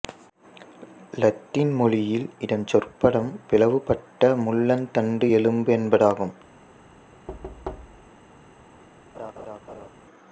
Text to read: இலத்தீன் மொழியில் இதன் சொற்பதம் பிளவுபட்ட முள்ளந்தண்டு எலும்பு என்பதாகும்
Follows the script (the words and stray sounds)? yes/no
no